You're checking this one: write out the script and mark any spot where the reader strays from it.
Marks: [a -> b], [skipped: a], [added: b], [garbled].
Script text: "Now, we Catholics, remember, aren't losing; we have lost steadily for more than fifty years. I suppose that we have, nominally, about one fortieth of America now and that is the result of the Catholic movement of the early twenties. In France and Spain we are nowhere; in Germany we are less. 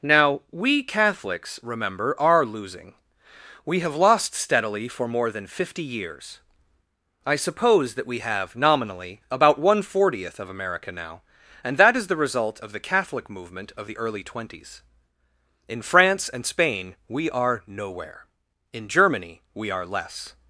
"Now, we Catholics, remember, [aren't -> are] losing; we have lost steadily for more than fifty years. I suppose that we have, nominally, about one fortieth of America now and that is the result of the Catholic movement of the early twenties. In France and Spain we are nowhere; in Germany we are less.